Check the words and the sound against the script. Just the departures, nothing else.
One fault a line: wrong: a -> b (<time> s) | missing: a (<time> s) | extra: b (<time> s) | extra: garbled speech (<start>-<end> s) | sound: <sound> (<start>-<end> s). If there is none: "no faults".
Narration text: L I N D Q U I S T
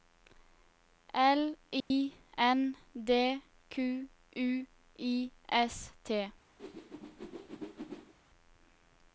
sound: dropout (1.8-1.9 s)
sound: whoosh (6.6-8.1 s)